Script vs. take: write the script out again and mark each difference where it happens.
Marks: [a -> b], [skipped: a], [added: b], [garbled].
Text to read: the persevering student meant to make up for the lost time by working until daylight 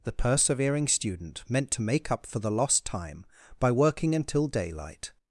the persevering student meant to make up for the lost time by working until daylight